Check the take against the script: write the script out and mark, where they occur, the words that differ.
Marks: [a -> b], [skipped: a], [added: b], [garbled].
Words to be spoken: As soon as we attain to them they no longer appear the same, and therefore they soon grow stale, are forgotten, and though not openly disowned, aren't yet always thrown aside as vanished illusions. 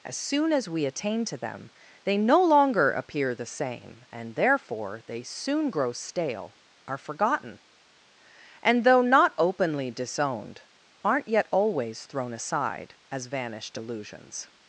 As soon as we attain to them they no longer appear the same, and therefore they soon grow stale, are forgotten, and though not openly disowned, aren't yet always thrown aside as vanished illusions.